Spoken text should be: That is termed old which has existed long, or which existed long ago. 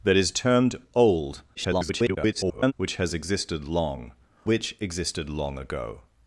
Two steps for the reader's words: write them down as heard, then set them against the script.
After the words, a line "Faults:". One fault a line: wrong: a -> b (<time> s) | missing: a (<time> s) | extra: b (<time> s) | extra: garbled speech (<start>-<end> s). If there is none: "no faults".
That is termed old [garbled] which has existed long, which existed long ago.
Faults:
extra: garbled speech (1.5-2.7 s)
missing: or (4.1 s)